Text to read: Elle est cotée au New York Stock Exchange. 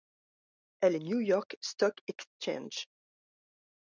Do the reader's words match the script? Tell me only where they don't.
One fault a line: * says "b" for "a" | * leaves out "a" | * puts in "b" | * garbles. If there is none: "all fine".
* leaves out "est cotée au"